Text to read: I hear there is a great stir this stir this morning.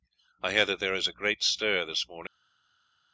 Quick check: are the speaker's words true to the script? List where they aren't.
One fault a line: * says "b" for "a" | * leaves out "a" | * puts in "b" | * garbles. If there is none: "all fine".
* puts in "that"
* leaves out "stir this"